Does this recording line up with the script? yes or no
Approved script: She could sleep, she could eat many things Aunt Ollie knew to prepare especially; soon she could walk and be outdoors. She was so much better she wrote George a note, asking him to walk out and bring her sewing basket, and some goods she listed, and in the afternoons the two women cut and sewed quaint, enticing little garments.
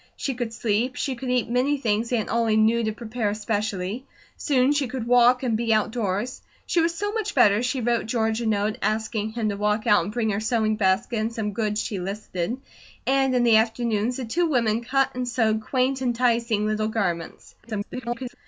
no